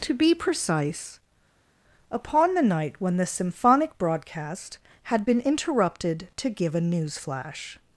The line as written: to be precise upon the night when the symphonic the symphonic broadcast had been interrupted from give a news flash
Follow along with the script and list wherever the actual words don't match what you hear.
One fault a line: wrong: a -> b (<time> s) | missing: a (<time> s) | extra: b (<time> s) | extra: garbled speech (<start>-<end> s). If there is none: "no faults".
missing: the symphonic (4.0 s)
wrong: from -> to (6.4 s)